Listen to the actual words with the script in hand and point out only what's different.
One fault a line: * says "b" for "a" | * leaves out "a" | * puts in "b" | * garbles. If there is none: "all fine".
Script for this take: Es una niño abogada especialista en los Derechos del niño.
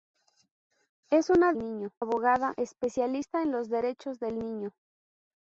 all fine